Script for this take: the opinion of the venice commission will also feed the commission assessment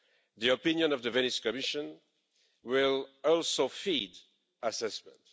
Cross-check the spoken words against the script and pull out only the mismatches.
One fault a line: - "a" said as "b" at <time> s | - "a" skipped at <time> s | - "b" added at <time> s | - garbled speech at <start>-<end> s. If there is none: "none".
- "the commission" skipped at 4.2 s